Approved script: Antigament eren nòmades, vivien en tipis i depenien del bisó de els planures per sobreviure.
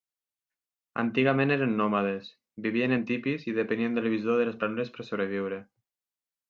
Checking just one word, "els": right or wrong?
wrong